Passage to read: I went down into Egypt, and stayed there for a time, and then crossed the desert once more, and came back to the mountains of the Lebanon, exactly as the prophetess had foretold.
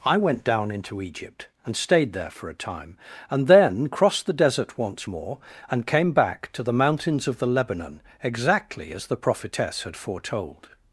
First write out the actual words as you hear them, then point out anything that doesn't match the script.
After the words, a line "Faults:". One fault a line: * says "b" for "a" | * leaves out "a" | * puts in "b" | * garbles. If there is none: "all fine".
I went down into Egypt, and stayed there for a time, and then crossed the desert once more, and came back to the mountains of the Lebanon, exactly as the prophetess had foretold.
Faults:
all fine